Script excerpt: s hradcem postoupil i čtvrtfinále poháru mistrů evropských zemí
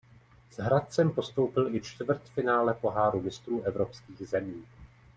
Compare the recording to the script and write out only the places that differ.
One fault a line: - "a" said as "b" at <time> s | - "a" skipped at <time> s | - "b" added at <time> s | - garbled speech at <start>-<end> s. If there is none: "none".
none